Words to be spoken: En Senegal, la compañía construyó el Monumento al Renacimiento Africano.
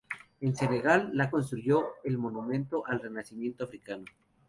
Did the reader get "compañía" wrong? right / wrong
wrong